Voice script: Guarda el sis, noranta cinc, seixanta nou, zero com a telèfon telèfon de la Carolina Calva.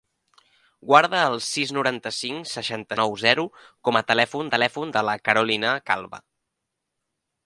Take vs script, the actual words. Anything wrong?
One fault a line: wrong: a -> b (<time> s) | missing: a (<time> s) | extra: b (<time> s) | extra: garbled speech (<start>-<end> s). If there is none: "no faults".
no faults